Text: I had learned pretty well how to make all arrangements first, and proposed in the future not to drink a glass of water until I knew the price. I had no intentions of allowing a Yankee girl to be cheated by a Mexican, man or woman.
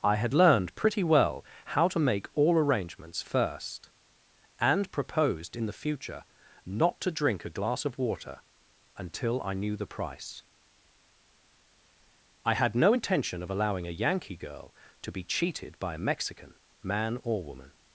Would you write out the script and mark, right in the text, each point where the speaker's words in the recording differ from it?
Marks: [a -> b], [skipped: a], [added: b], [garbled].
I had learned pretty well how to make all arrangements first, and proposed in the future not to drink a glass of water until I knew the price. I had no [intentions -> intention] of allowing a Yankee girl to be cheated by a Mexican, man or woman.